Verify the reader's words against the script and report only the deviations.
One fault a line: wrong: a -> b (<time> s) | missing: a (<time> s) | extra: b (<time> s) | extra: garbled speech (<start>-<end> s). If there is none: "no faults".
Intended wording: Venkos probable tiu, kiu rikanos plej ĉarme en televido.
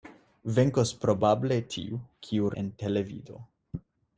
missing: rikanos plej ĉarme (2.5 s)